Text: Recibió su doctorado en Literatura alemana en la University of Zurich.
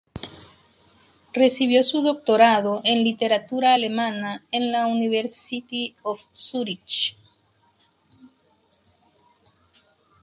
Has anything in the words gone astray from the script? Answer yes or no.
no